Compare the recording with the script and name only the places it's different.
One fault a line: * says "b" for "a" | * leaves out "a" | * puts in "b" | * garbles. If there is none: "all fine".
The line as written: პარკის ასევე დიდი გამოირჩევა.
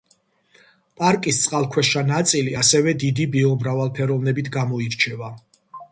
* puts in "წყალქვეშა ნაწილი"
* puts in "ბიომრავალფეროვნებით"